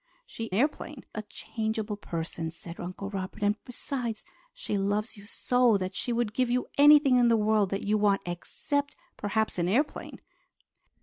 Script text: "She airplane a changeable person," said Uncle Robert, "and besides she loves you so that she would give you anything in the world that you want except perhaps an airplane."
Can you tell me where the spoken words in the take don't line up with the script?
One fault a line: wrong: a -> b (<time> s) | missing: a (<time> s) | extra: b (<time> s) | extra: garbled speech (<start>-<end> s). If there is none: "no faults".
no faults